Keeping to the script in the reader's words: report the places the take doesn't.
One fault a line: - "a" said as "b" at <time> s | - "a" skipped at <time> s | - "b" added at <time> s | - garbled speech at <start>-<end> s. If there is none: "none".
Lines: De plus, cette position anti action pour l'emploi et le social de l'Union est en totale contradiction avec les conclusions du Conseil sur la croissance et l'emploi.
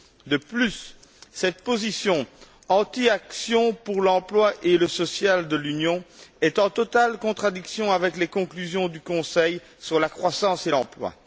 none